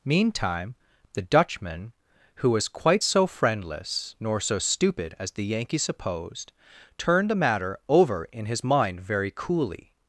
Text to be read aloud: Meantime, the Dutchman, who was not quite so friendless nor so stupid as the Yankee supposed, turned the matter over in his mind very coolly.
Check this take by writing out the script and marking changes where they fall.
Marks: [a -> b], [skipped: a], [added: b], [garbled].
Meantime, the Dutchman, who was [skipped: not] quite so friendless nor so stupid as the Yankee supposed, turned the matter over in his mind very coolly.